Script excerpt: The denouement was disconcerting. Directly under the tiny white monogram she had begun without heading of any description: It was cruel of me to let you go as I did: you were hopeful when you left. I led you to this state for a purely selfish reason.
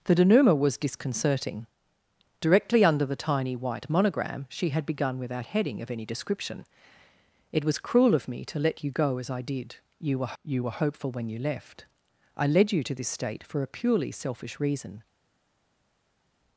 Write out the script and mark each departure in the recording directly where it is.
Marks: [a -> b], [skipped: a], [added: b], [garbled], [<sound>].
The denouement was disconcerting. Directly under the tiny white monogram she had begun without heading of any description: It was cruel of me to let you go as I did: you were [added: you were] hopeful when you left. I led you to this state for a purely selfish reason.